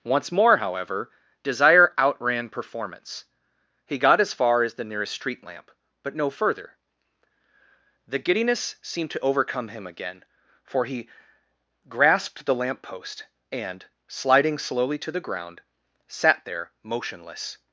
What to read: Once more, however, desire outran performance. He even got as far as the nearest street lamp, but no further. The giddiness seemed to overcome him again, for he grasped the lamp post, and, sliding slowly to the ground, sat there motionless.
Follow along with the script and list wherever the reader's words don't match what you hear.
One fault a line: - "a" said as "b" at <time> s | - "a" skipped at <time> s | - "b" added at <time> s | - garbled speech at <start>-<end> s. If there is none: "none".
- "even" skipped at 4.0 s